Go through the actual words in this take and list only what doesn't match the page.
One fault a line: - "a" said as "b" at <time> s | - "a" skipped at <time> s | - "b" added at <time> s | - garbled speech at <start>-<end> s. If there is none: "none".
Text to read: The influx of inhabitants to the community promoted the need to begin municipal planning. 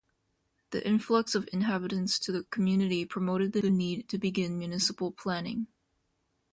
- "the" added at 3.6 s